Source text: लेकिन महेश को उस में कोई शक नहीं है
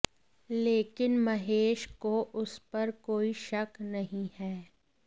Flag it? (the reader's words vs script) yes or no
yes